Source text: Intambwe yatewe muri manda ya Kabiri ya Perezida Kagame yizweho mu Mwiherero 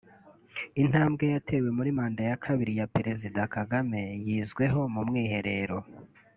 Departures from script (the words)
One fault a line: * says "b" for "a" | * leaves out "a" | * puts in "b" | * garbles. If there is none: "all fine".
all fine